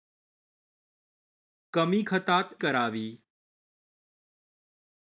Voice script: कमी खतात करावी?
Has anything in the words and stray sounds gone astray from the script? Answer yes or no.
no